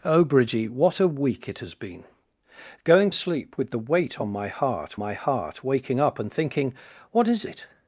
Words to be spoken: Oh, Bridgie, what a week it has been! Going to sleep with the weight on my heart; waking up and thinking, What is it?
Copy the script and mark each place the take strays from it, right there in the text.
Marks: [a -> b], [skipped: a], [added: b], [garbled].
Oh, Bridgie, what a week it has been! Going [skipped: to] sleep with the weight on my heart; [added: my heart] waking up and thinking, What is it?